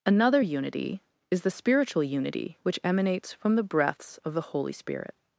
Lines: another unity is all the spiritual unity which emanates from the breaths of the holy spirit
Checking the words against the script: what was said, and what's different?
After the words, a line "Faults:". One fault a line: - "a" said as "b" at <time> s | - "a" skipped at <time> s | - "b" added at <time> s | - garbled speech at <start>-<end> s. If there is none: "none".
another unity is the spiritual unity which emanates from the breaths of the holy spirit
Faults:
- "all" skipped at 1.4 s